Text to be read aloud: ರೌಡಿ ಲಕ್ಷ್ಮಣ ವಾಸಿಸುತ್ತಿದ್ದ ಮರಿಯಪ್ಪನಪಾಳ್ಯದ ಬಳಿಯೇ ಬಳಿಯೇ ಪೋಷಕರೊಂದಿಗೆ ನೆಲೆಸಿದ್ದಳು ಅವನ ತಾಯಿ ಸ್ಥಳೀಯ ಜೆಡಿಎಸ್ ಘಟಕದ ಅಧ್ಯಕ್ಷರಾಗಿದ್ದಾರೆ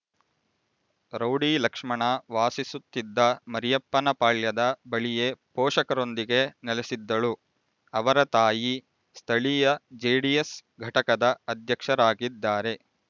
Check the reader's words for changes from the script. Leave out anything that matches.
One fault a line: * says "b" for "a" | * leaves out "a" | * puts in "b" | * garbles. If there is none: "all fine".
* leaves out "ಬಳಿಯೇ"
* says "ಅವರ" for "ಅವನ"